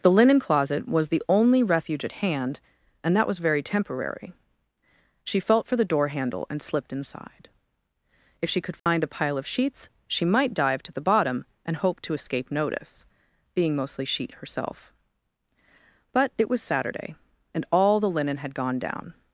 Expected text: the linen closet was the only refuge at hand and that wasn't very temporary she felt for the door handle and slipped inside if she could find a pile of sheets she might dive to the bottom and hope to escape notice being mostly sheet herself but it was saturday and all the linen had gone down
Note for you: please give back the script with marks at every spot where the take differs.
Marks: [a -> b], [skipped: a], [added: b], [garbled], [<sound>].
the linen closet was the only refuge at hand and that [wasn't -> was] very temporary she felt for the door handle and slipped inside if she could find [dropout] a pile of sheets she might dive to the bottom and hope to escape notice being mostly sheet herself but it was saturday and all the linen had gone down